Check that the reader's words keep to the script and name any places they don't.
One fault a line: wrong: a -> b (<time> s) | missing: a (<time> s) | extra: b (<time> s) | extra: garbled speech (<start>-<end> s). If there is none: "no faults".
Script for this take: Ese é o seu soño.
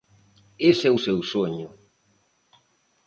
no faults